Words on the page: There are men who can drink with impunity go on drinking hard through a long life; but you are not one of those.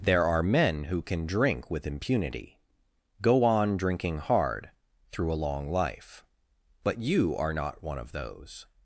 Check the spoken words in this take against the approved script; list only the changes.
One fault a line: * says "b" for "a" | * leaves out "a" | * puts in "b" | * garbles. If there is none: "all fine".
all fine